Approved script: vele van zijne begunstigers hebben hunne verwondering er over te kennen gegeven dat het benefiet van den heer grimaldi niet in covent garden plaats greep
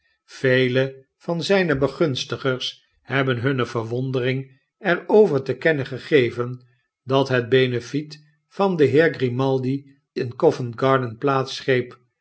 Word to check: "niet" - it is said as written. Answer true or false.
false